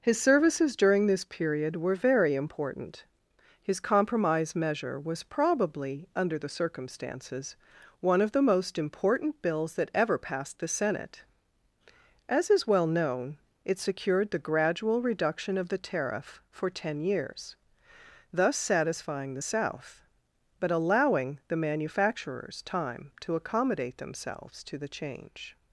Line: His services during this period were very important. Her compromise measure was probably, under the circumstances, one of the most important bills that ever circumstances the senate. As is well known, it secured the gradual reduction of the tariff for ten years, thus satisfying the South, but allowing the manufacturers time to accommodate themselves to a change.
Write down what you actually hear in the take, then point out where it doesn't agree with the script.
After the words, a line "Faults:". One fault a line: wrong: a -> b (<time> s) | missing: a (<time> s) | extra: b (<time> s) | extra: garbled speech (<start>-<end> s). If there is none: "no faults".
His services during this period were very important. His compromise measure was probably, under the circumstances, one of the most important bills that ever passed the senate. As is well known, it secured the gradual reduction of the tariff for ten years, thus satisfying the South, but allowing the manufacturers time to accommodate themselves to the change.
Faults:
wrong: Her -> His (3.6 s)
wrong: circumstances -> passed (10.2 s)
wrong: a -> the (24.8 s)